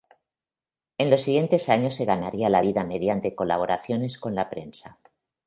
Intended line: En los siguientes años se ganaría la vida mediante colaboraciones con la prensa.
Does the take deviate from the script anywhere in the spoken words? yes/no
no